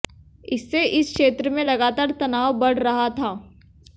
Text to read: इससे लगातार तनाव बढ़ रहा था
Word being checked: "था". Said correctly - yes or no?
yes